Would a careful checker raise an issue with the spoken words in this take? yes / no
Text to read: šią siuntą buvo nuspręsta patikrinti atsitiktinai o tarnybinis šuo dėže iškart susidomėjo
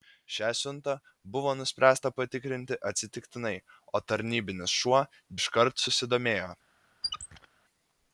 yes